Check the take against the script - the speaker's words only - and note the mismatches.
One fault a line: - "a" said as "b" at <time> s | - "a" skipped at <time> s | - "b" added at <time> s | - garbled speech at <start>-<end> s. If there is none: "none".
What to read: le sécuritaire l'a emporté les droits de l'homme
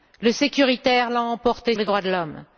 none